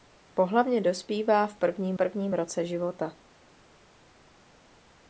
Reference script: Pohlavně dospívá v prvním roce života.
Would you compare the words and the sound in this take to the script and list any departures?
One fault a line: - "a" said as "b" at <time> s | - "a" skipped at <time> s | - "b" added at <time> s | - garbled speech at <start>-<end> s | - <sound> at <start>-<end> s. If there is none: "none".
- "prvním" added at 1.9 s